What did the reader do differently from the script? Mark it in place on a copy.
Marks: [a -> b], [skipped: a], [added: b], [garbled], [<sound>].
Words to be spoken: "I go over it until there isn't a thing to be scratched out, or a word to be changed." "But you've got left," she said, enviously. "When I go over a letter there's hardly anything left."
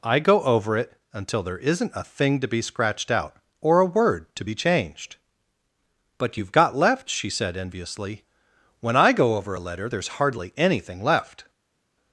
"I go over it until there isn't a thing to be scratched out, or a word to be changed." "But you've got left," she said, enviously. "When I go over a letter there's hardly anything left."